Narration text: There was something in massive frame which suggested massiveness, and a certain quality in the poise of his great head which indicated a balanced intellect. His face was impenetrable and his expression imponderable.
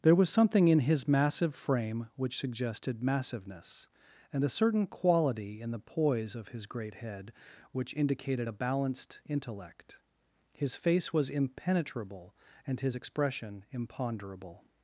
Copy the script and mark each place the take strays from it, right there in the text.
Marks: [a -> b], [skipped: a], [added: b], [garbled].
There was something in [added: his] massive frame which suggested massiveness, and a certain quality in the poise of his great head which indicated a balanced intellect. His face was impenetrable and his expression imponderable.